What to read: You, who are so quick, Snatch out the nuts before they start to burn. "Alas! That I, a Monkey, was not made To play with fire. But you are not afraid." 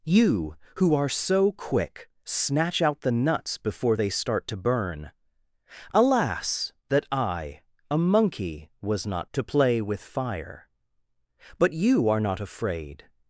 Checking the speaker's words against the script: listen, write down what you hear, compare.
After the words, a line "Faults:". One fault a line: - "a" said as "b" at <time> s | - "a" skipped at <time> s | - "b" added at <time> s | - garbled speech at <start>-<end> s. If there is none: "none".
You, who are so quick, Snatch out the nuts before they start to burn. "Alas! That I, a Monkey, was not To play with fire. But you are not afraid."
Faults:
- "made" skipped at 9.3 s